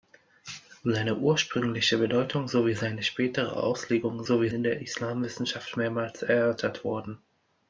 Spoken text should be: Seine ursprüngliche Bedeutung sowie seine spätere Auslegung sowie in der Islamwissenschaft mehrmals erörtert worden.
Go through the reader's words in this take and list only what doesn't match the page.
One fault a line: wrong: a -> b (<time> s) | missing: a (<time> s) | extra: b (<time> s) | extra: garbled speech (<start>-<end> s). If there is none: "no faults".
no faults